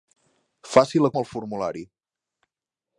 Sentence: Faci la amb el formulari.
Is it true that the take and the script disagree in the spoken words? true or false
false